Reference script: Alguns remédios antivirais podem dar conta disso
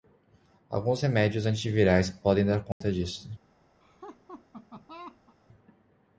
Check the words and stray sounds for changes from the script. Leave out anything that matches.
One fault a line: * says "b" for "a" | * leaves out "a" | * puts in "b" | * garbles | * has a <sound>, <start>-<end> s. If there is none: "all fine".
* has a dropout, 2.7-2.8 s
* has a laugh, 3.8-5.4 s